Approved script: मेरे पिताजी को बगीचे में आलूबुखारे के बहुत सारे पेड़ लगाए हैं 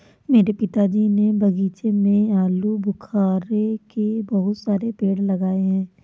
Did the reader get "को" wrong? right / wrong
wrong